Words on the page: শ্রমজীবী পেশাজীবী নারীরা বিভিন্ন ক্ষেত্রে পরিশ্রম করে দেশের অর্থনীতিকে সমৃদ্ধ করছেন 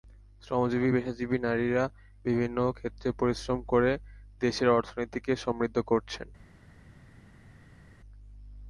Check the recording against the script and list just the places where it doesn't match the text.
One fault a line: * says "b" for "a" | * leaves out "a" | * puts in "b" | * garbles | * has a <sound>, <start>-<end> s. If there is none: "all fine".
all fine